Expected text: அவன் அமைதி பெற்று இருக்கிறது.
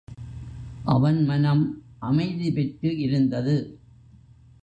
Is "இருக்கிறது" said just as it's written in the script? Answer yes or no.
no